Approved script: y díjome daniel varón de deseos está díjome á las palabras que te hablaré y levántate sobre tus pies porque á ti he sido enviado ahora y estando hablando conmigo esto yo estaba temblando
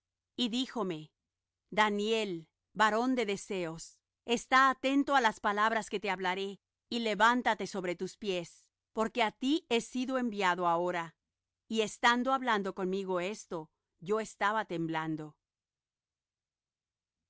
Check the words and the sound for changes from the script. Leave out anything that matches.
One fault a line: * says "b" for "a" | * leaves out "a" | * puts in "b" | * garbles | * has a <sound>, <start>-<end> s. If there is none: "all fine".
* says "atento" for "díjome"